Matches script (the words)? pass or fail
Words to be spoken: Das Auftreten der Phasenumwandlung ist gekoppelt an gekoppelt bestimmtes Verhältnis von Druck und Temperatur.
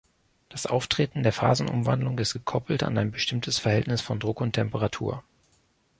fail